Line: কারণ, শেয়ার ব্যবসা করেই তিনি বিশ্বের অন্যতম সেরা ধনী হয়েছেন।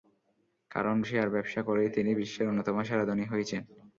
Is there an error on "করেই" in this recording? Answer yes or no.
no